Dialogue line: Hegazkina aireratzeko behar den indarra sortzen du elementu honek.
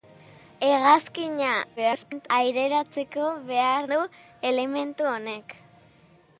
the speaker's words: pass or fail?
fail